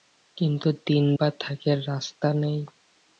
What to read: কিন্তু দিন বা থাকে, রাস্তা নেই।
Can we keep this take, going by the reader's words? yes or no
yes